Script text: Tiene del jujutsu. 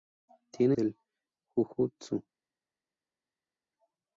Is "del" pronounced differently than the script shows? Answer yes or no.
no